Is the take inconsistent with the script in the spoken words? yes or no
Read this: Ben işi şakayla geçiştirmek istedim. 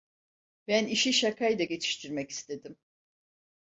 no